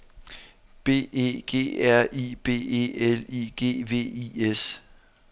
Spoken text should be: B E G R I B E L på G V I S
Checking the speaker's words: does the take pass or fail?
fail